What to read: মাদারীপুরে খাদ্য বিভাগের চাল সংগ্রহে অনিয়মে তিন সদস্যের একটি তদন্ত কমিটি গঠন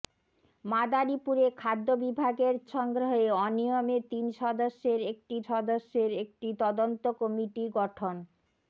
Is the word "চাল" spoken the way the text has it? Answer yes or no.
no